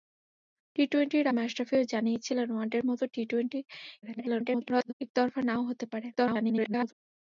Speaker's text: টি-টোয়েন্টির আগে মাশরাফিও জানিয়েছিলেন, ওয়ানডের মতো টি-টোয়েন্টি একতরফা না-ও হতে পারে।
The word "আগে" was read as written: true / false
false